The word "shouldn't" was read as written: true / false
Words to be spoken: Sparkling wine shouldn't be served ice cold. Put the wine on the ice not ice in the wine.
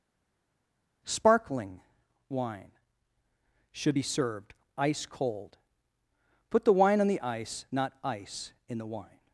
false